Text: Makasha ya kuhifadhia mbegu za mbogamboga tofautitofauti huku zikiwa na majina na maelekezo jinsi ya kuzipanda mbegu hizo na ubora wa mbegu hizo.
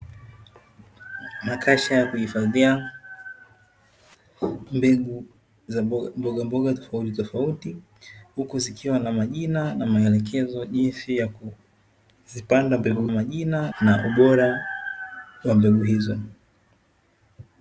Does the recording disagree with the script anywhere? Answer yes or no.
yes